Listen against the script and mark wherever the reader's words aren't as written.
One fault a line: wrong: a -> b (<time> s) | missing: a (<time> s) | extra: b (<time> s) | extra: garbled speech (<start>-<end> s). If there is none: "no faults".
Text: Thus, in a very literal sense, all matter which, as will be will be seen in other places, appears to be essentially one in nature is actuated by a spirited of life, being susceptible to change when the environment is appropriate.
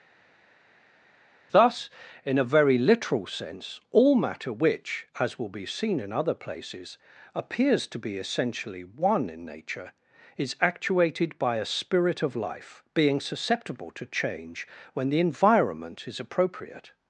missing: will be (5.7 s)
wrong: spirited -> spirit (11.6 s)